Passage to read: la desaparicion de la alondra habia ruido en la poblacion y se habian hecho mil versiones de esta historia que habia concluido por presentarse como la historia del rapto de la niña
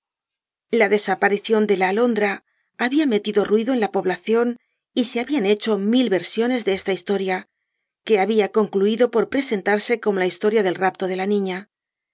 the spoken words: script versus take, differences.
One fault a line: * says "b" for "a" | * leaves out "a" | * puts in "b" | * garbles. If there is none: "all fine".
* puts in "metido"